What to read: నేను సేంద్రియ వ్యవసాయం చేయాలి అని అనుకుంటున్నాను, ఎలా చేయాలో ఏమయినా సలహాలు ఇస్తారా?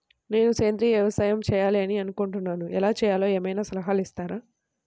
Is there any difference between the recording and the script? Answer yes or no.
no